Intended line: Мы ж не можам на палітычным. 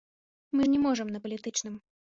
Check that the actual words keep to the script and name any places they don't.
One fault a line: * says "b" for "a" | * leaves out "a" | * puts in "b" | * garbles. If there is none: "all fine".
all fine